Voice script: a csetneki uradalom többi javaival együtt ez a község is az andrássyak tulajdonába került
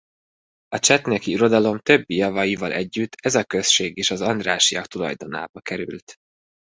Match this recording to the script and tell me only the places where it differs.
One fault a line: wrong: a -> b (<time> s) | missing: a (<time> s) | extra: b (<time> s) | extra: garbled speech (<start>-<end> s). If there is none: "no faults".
no faults